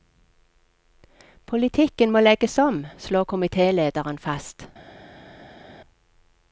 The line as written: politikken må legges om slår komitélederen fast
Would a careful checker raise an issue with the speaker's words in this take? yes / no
no